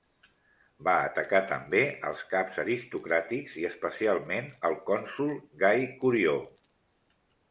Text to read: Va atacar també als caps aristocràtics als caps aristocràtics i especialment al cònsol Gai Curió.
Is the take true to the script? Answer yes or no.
no